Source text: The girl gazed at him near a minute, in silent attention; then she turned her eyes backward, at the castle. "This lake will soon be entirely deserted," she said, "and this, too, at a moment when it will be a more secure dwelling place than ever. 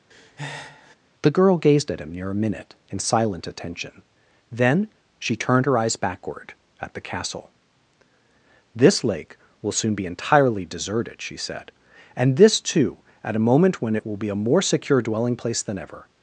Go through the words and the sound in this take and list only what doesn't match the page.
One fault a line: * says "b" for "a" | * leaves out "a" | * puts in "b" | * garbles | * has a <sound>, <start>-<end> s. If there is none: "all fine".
* has a breath, 0.1-1.0 s